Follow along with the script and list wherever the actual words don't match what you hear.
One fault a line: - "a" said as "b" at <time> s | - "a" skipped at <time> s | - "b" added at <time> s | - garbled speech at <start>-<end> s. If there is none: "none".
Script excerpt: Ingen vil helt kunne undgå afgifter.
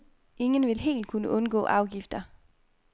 none